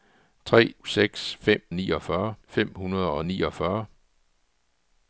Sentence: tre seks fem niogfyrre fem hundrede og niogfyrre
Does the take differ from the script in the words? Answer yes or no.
no